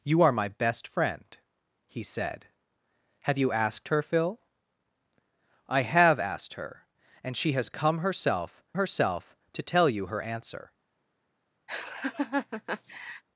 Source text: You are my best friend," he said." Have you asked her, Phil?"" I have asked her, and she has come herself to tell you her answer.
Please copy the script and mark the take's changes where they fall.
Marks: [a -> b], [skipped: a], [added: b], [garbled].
You are my best friend," he said." Have you asked her, Phil?"" I have asked her, and she has come herself [added: herself] to tell you her answer.